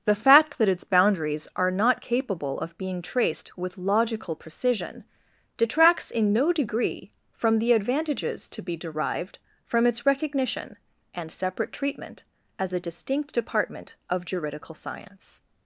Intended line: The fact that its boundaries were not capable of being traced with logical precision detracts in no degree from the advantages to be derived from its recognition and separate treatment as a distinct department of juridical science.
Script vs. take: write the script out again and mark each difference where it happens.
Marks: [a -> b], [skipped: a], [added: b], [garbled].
The fact that its boundaries [were -> are] not capable of being traced with logical precision detracts in no degree from the advantages to be derived from its recognition and separate treatment as a distinct department of juridical science.